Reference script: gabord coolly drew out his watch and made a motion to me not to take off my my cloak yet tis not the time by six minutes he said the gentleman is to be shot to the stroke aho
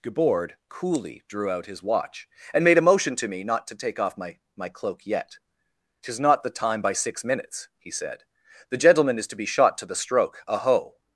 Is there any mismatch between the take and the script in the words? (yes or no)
no